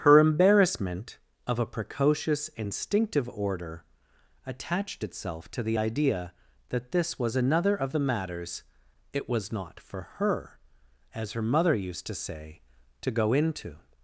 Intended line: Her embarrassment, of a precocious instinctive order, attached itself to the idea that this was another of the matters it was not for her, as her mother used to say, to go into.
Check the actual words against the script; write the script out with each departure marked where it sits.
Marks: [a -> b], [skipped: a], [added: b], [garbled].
Her embarrassment, of a precocious instinctive order, attached itself to the idea that this was another of the matters it was not for her, as her mother used to say, to go into.